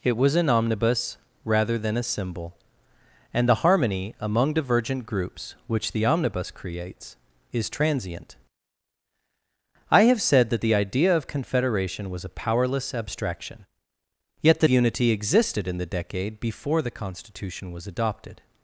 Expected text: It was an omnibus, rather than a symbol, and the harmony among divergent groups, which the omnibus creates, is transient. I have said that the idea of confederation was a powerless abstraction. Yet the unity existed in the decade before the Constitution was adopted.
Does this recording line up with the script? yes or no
yes